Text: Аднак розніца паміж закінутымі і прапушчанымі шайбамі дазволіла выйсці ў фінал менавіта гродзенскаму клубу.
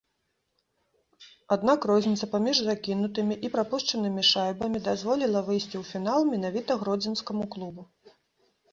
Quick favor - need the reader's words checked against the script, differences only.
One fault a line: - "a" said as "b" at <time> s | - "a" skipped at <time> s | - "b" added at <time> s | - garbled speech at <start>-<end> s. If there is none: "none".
none